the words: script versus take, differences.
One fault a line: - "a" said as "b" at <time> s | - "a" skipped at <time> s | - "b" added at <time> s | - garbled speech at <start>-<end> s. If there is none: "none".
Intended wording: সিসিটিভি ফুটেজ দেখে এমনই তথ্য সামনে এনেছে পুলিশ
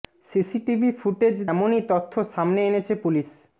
- "দেখে" skipped at 1.4 s